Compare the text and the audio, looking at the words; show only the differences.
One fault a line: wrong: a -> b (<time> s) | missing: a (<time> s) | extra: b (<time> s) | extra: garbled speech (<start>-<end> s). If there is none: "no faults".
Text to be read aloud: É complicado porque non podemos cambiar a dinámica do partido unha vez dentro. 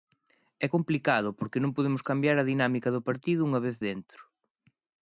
no faults